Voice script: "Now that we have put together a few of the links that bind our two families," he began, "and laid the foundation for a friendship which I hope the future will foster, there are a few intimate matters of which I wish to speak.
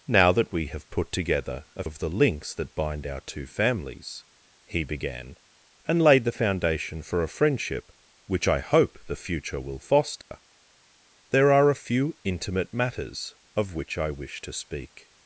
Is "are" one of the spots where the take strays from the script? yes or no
no